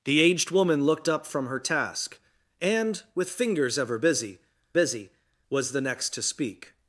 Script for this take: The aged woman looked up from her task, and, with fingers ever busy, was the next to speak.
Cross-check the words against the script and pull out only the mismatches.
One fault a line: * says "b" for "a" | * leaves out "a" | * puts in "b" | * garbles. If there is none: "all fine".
* puts in "busy"